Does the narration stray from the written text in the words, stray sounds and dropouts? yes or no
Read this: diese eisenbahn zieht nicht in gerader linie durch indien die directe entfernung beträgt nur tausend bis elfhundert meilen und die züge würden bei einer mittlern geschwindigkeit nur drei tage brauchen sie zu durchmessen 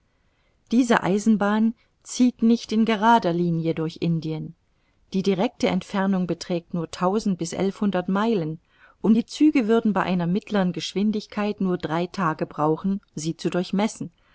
no